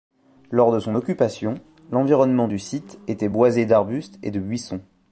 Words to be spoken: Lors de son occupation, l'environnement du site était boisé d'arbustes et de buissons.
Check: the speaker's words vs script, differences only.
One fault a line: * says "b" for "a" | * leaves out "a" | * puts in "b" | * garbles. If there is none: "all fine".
all fine